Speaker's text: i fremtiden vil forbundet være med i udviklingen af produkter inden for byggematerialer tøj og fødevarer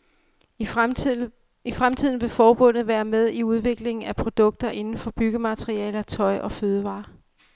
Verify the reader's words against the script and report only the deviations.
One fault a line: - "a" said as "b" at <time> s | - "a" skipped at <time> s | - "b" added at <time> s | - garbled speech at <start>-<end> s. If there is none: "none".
none